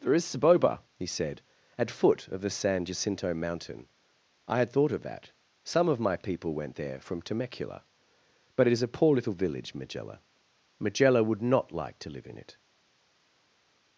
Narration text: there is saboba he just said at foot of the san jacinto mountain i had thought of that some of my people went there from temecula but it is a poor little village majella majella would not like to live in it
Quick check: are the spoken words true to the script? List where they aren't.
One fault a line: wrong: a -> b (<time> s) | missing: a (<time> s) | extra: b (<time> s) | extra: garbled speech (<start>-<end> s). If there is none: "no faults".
missing: just (1.1 s)